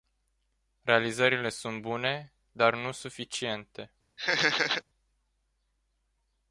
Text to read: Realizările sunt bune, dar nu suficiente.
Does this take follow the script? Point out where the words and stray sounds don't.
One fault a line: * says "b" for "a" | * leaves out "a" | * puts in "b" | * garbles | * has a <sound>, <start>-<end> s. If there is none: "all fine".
* has a laugh, 4.2-4.8 s